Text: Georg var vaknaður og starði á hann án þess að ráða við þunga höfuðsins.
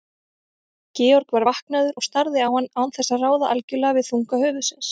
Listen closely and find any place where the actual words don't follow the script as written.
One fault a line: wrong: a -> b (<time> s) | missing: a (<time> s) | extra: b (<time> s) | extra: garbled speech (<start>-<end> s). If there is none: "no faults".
extra: algjörlega (3.5 s)